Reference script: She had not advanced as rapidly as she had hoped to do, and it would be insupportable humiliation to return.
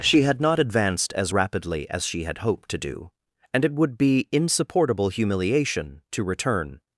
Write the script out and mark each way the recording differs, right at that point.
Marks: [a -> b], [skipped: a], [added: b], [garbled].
She had not advanced as rapidly as she had hoped to do, and it would be insupportable humiliation to return.